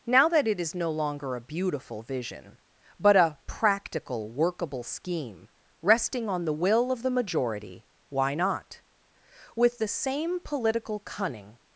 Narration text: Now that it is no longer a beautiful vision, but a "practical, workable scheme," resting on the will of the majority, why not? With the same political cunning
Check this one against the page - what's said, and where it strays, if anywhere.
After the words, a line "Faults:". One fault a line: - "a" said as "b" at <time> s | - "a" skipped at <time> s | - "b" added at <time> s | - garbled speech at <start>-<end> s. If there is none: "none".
Now that it is no longer a beautiful vision, but a "practical, workable scheme," resting on the will of the majority, why not? With the same political cunning
Faults:
none